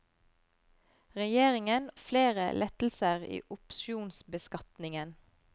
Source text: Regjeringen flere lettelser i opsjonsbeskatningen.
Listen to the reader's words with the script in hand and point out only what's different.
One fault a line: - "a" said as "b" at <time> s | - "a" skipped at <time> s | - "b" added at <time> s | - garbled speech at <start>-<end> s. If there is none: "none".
none